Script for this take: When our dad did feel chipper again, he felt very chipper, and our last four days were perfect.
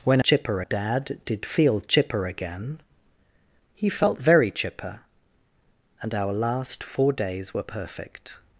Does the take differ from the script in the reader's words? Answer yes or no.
yes